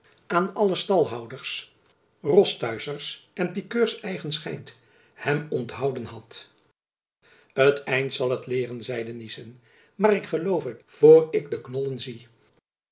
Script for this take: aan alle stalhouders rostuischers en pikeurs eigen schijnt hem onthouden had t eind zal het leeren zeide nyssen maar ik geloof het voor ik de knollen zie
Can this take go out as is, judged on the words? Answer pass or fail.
pass